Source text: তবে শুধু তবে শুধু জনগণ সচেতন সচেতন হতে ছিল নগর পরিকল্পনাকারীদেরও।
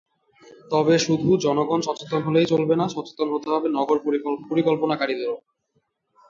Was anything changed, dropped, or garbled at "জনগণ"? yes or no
yes